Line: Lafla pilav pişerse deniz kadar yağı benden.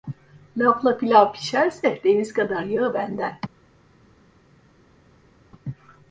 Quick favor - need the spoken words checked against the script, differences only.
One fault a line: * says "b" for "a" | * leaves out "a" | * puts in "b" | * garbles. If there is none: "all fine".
all fine